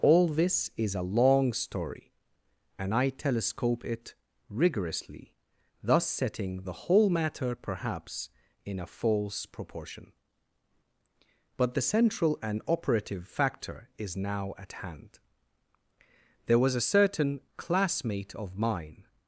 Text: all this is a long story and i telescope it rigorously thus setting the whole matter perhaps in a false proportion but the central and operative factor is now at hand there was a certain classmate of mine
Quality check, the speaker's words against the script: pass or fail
pass